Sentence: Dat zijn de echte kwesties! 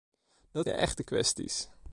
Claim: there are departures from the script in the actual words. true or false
true